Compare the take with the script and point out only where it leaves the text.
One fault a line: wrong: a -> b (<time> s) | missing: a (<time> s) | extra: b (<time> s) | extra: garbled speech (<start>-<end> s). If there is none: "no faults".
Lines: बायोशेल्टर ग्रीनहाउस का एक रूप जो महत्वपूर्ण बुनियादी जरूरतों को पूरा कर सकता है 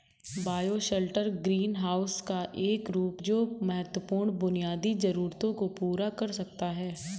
no faults